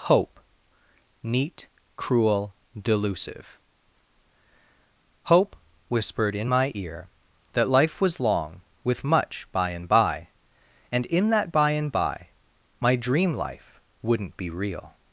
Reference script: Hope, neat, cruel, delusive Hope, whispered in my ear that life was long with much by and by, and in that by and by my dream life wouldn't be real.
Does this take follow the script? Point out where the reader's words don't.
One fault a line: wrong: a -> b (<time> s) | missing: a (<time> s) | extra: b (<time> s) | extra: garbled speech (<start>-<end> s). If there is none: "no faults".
no faults